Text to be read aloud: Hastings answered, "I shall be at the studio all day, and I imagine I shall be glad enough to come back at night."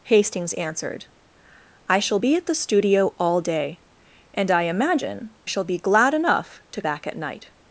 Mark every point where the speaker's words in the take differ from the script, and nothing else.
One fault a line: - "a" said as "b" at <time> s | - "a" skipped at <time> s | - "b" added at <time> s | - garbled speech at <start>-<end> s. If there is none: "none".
- "I" skipped at 5.3 s
- "come" skipped at 6.8 s